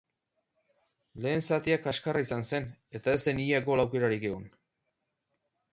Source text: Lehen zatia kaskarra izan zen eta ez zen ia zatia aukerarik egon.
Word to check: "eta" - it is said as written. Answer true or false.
true